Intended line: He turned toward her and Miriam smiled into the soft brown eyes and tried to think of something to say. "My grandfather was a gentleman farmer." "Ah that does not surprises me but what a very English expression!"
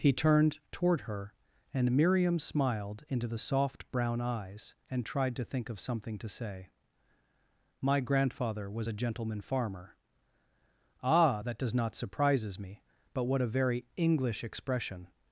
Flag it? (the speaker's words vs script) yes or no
no